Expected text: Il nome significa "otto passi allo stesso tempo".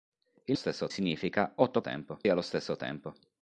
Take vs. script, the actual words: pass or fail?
fail